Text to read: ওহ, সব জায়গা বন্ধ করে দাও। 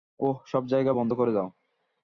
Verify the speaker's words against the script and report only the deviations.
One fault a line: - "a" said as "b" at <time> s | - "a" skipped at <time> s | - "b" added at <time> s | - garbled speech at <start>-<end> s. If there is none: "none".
none